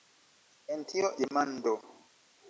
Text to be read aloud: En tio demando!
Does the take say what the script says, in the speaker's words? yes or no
yes